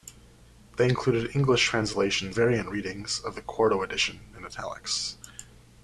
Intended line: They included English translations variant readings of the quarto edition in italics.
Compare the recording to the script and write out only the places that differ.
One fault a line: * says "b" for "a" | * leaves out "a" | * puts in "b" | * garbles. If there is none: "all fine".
all fine